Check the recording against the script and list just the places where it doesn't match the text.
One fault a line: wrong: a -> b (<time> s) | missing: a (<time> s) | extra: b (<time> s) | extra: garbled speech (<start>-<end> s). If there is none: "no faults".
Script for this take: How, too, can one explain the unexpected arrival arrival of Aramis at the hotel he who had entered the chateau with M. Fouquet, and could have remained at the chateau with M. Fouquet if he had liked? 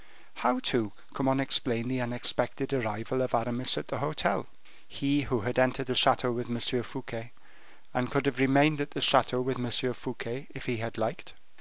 missing: arrival (3.2 s)